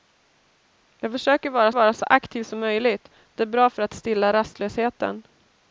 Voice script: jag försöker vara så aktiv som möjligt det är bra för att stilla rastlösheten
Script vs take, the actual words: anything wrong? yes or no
yes